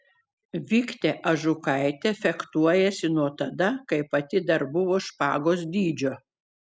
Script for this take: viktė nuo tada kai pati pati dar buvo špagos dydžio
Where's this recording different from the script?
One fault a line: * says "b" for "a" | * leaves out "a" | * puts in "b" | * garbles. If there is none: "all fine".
* puts in "ažukaitė fechtuojasi"
* leaves out "pati"